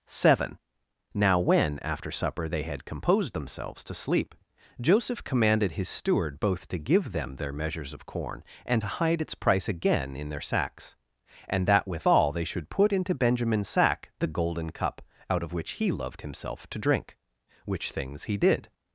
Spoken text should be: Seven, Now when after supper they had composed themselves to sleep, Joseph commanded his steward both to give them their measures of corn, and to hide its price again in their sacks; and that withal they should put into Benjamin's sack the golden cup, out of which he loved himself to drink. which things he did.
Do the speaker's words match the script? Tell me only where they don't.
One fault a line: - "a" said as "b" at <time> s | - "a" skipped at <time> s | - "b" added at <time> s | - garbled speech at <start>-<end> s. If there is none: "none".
none